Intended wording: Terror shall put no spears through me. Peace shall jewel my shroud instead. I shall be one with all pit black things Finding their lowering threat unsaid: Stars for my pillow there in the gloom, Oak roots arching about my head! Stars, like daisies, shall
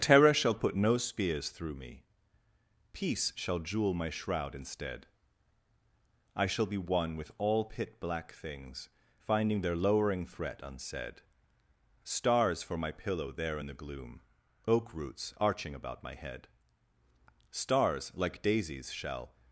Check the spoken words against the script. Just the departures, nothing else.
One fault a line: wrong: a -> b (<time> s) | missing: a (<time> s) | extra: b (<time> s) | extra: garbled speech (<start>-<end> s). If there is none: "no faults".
no faults